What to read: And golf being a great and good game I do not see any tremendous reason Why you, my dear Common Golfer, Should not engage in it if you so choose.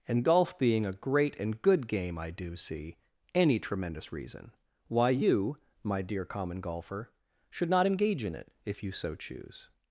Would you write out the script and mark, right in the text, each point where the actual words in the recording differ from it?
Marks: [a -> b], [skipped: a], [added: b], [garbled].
And golf being a great and good game I do [skipped: not] see any tremendous reason Why you, my dear Common Golfer, Should not engage in it if you so choose.